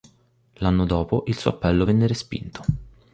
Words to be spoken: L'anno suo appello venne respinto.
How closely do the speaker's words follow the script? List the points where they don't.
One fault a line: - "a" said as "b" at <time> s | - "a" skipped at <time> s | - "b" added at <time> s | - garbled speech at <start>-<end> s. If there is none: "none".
- "dopo il" added at 0.8 s